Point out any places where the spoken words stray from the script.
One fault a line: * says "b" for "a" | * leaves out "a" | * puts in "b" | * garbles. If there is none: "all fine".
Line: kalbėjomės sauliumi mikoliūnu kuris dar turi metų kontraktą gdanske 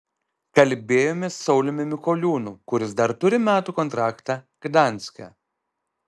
all fine